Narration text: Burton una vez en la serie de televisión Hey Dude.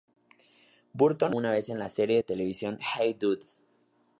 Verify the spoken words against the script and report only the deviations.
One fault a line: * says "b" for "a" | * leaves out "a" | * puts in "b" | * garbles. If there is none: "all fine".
all fine